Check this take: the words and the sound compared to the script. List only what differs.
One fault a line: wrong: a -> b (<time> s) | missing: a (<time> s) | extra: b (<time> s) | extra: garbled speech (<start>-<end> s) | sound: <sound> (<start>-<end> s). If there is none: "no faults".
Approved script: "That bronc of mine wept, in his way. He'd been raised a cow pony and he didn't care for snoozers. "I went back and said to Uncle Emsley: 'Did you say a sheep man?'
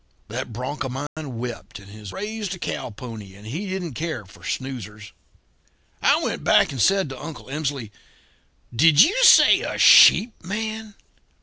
sound: dropout (1.1-1.2 s)
missing: way He'd been (2.1 s)